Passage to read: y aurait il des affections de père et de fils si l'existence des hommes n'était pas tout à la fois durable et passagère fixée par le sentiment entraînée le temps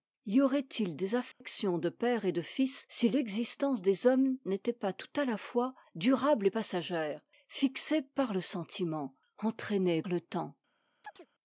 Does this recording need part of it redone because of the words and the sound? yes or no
yes